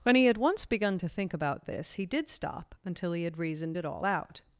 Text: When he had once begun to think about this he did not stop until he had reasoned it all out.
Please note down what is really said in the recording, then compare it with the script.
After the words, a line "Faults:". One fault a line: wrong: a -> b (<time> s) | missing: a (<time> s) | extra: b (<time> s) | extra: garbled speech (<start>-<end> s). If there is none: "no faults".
When he had once begun to think about this he did stop until he had reasoned it all out.
Faults:
missing: not (2.3 s)